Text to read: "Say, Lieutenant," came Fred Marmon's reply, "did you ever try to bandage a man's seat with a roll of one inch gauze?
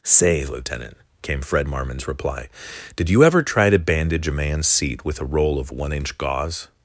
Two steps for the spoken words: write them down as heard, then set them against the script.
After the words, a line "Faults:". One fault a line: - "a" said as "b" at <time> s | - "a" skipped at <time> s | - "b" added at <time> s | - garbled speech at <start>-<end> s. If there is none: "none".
"Say, Lieutenant," came Fred Marmon's reply, "did you ever try to bandage a man's seat with a roll of one inch gauze?
Faults:
none